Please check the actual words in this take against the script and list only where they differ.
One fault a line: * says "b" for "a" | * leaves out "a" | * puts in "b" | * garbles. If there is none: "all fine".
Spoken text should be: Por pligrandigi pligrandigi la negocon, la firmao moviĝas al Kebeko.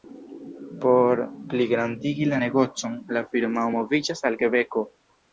* leaves out "pligrandigi"